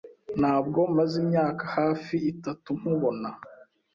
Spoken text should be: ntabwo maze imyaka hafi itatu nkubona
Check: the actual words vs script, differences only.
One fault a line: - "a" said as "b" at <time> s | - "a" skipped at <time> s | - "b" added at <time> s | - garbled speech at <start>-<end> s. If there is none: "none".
none